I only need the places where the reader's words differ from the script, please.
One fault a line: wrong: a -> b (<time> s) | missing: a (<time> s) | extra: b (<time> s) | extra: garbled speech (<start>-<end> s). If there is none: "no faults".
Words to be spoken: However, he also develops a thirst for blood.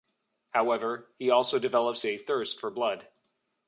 no faults